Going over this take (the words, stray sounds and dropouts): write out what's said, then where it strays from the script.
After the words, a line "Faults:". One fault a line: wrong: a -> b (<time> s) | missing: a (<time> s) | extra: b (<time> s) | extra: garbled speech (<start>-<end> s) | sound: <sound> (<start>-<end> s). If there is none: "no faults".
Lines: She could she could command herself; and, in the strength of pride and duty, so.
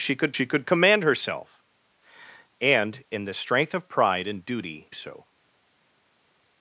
She could she could command herself; and, in the strength of pride and duty, so.
Faults:
no faults